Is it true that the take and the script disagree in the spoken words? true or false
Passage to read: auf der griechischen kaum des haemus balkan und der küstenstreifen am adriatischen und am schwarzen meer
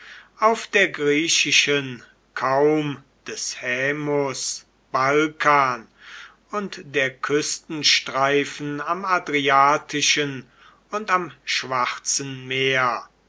false